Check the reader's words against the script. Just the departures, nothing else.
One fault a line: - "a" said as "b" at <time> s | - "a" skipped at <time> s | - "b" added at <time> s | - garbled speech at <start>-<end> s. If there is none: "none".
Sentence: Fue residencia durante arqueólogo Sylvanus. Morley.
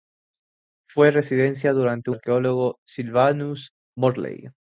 none